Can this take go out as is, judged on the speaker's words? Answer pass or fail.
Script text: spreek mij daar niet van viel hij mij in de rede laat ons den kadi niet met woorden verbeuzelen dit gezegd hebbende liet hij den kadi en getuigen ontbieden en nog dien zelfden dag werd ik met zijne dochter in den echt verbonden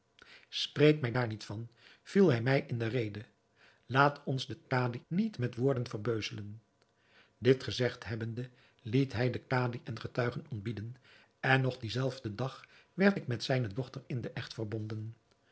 pass